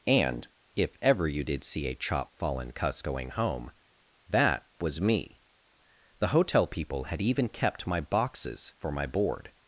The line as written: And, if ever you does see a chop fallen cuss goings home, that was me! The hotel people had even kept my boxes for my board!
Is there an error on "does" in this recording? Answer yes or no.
yes